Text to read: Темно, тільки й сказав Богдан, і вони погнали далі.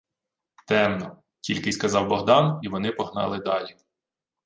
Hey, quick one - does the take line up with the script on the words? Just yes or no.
yes